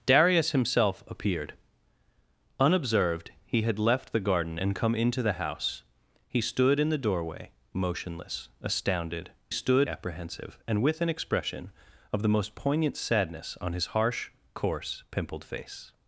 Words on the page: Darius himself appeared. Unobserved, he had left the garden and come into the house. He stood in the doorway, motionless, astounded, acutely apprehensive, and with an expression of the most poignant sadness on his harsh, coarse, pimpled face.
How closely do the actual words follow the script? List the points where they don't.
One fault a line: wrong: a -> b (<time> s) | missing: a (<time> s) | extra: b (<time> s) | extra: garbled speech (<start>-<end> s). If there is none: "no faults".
wrong: acutely -> stood (9.5 s)